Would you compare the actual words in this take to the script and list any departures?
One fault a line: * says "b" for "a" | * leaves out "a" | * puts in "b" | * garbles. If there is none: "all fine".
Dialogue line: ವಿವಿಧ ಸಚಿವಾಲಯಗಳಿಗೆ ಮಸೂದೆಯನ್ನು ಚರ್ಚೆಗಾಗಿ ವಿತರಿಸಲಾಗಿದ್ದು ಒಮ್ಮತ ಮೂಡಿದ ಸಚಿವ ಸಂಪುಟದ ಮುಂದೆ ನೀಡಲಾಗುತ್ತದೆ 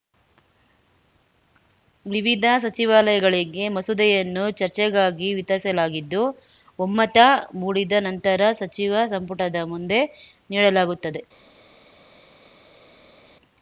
* puts in "ನಂತರ"